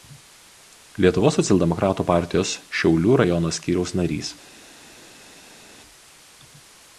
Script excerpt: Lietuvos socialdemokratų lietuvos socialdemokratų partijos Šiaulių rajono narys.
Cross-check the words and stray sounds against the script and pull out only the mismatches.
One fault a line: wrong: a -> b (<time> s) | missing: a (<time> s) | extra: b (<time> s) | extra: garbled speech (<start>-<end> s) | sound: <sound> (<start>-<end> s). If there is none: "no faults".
missing: lietuvos socialdemokratų (2.0 s)
extra: skyriaus (3.6 s)